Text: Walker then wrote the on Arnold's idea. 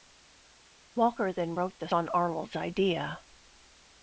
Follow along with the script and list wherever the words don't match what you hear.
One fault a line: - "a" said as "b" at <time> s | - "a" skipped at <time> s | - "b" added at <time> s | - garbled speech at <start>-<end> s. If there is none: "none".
none